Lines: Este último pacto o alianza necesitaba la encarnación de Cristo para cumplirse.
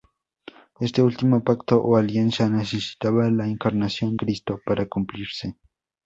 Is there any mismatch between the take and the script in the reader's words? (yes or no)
yes